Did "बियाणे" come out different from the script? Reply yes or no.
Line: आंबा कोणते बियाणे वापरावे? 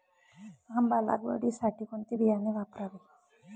no